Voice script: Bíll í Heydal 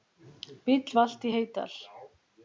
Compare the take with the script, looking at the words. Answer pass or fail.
fail